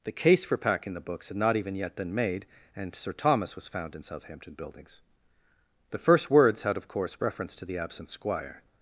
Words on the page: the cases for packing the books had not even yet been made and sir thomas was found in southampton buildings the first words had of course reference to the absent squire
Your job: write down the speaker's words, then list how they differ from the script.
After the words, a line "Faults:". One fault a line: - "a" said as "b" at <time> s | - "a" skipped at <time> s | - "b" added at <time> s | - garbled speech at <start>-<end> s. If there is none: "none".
the case for packing the books had not even yet been made and sir thomas was found in southampton buildings the first words had of course reference to the absent squire
Faults:
- "cases" said as "case" at 0.1 s